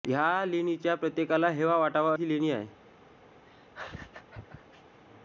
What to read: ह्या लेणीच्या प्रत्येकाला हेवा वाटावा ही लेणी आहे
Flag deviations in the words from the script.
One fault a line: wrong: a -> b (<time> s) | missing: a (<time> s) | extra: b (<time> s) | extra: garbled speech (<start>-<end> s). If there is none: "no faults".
no faults